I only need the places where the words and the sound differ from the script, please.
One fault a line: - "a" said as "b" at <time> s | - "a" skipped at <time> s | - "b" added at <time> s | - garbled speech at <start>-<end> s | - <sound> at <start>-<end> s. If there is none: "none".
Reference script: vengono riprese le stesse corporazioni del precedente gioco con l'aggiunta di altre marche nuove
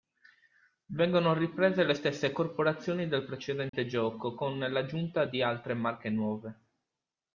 - dropout at 3.7-3.7 s